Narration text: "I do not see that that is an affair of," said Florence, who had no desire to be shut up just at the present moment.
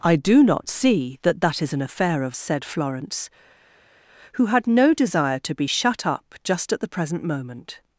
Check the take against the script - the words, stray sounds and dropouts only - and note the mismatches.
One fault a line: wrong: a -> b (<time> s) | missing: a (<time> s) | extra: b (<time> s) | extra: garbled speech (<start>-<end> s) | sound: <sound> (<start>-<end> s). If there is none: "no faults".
no faults